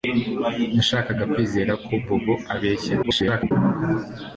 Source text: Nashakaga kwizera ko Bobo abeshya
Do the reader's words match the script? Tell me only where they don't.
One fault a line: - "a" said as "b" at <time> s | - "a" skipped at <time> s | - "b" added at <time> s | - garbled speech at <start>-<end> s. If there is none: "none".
- garbled speech at 3.0-3.5 s